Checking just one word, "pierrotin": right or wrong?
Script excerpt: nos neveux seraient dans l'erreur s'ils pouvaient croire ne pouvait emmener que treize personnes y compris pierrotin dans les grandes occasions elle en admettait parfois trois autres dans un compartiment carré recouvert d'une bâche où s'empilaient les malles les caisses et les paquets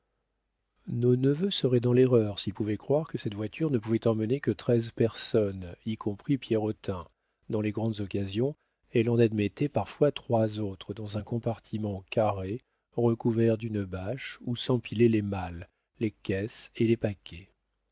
right